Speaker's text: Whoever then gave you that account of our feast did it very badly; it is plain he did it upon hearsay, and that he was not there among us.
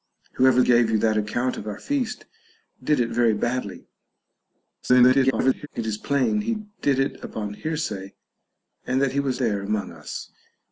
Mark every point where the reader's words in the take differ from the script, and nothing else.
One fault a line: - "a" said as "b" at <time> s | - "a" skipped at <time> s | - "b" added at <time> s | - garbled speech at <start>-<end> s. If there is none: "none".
- "then" skipped at 0.6 s
- garbled speech at 4.8-5.7 s
- "not" skipped at 9.4 s